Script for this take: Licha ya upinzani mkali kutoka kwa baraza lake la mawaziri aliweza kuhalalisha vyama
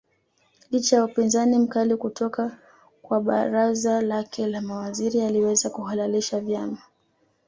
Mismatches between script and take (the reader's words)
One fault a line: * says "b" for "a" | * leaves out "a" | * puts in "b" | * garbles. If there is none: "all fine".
all fine